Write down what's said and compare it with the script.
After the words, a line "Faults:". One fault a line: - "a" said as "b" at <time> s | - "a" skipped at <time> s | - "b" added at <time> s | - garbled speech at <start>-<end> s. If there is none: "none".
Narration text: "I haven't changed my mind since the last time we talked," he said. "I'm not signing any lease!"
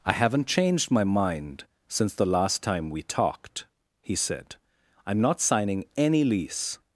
"I haven't changed my mind since the last time we talked," he said. "I'm not signing any lease!"
Faults:
none